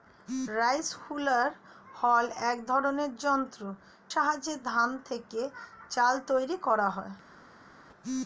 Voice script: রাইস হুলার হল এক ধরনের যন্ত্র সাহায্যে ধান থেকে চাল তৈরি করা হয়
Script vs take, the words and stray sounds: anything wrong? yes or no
no